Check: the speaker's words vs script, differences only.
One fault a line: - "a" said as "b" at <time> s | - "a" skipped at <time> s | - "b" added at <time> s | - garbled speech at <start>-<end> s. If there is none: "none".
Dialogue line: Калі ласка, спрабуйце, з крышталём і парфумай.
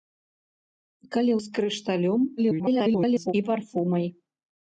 - "ласка спрабуйце" skipped at 1.4 s
- garbled speech at 2.4-3.3 s